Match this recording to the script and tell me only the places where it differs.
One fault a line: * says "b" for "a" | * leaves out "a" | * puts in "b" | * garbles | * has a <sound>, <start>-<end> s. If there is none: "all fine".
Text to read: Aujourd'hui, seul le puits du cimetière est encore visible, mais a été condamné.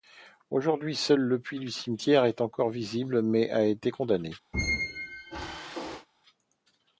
* has a squeak, 4.5-6.1 s